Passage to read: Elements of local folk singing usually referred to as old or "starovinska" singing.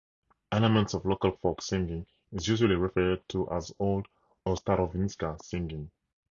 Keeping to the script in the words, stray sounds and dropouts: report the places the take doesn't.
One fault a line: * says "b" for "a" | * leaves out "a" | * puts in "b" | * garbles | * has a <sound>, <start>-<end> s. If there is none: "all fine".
* puts in "is"